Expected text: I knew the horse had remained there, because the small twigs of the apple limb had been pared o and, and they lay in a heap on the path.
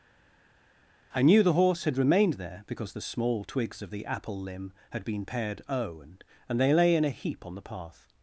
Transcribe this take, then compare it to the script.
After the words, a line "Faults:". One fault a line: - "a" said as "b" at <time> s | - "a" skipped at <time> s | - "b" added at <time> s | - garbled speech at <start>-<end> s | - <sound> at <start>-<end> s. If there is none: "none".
I knew the horse had remained there, because the small twigs of the apple limb had been pared o and, and they lay in a heap on the path.
Faults:
none